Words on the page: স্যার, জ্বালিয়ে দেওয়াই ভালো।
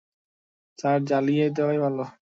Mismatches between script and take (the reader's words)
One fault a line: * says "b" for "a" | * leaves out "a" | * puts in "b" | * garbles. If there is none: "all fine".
all fine